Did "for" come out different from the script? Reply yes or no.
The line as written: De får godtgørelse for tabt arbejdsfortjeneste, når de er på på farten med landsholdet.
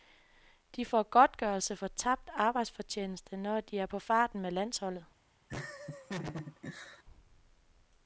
no